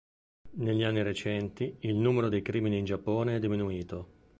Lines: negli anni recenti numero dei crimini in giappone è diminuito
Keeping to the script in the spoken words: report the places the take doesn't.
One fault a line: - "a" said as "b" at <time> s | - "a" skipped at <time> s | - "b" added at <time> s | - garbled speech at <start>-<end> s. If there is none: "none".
- "il" added at 1.8 s